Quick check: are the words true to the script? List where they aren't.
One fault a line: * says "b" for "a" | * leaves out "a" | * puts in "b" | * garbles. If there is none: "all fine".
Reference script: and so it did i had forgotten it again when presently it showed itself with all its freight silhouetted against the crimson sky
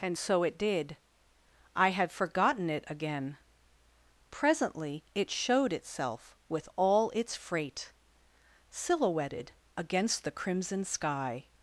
* leaves out "when"